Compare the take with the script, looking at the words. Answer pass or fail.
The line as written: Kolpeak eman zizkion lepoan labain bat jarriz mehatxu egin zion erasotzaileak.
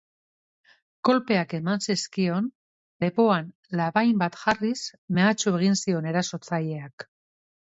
pass